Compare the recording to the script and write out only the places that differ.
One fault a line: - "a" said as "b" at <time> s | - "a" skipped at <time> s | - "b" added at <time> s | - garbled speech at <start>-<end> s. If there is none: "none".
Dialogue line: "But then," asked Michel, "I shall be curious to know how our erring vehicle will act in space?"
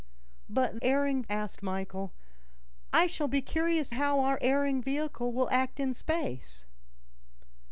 - "then" said as "erring" at 0.8 s
- "to know" skipped at 3.9 s